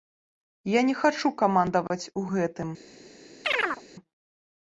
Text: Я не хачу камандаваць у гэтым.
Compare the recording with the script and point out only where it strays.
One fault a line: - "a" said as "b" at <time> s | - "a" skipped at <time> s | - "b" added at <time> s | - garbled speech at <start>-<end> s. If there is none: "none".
none